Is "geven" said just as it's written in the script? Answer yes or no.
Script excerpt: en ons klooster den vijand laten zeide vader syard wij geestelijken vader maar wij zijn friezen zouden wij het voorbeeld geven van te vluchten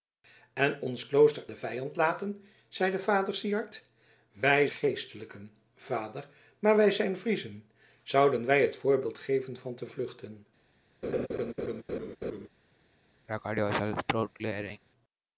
yes